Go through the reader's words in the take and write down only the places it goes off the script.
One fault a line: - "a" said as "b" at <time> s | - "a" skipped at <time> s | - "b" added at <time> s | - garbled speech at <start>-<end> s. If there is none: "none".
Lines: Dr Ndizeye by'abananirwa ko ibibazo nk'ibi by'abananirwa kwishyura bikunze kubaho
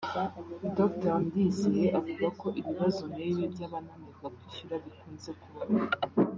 - "by'abananirwa" said as "avuga" at 2.0 s